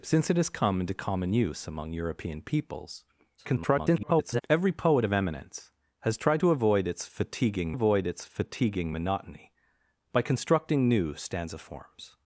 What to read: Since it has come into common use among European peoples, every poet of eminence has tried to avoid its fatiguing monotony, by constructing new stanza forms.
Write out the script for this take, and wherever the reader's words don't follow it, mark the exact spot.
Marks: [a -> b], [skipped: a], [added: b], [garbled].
Since it has come into common use among European peoples, [garbled] every poet of eminence has tried to avoid its fatiguing [added: avoid its fatiguing] monotony, by constructing new stanza forms.